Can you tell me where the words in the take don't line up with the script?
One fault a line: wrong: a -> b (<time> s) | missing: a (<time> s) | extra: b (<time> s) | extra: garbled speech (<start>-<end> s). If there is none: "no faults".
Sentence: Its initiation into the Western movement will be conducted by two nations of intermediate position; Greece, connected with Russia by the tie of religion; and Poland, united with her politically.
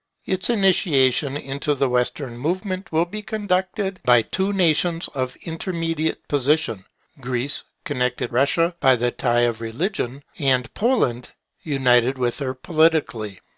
missing: with (8.3 s)